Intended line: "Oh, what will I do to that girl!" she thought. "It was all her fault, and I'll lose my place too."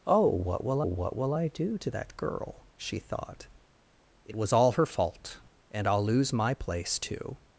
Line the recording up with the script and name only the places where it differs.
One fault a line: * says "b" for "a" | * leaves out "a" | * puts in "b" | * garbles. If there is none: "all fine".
* puts in "what will"